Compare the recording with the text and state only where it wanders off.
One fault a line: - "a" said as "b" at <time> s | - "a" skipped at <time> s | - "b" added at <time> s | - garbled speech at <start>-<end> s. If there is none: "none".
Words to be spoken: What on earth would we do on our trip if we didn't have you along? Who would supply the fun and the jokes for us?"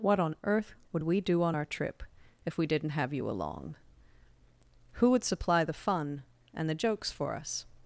none